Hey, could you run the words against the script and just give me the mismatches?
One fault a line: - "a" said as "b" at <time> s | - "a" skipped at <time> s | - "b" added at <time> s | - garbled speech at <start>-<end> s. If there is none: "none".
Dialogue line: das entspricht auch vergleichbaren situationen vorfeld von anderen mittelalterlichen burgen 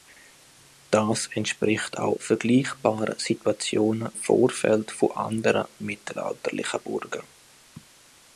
none